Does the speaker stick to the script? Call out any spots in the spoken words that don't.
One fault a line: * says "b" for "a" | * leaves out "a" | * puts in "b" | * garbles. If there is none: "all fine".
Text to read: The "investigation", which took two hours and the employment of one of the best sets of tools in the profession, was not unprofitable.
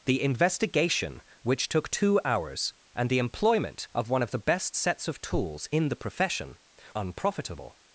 * leaves out "was not"